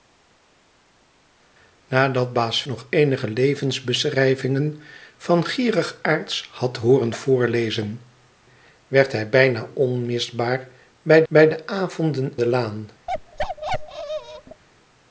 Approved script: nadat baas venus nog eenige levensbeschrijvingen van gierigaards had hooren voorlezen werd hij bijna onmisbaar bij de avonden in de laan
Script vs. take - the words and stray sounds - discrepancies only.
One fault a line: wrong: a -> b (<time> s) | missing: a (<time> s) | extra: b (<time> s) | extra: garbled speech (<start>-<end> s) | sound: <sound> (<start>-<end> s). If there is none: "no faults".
missing: venus (2.6 s)
extra: bij (11.3 s)
missing: in (12.3 s)
sound: bark (13.1-14.6 s)